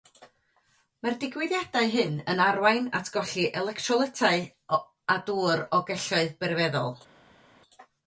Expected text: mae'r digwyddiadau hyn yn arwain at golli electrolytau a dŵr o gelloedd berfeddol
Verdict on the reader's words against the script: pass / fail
pass